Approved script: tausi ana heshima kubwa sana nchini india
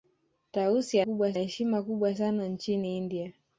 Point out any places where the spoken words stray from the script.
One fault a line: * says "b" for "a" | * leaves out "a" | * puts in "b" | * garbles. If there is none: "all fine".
* says "kubwa" for "ana"